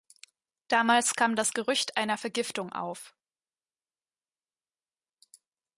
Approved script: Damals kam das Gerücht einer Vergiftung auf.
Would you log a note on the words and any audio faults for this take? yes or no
no